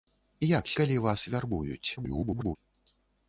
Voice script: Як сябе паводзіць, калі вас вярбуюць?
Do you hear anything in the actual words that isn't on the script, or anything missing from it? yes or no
yes